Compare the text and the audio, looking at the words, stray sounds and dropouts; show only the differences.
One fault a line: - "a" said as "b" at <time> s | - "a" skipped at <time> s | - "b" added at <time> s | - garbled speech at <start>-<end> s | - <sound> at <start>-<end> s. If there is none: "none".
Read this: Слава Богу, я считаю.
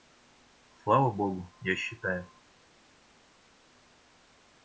none